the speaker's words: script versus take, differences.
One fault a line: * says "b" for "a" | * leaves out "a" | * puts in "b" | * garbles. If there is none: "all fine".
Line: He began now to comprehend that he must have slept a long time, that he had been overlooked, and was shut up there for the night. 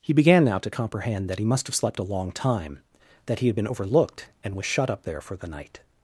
all fine